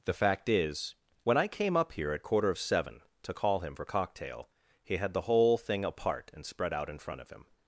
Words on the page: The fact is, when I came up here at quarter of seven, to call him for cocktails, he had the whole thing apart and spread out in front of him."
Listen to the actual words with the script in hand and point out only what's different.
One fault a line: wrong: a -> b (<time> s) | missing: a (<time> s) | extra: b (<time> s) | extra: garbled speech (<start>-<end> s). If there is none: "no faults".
wrong: cocktails -> cocktail (3.8 s)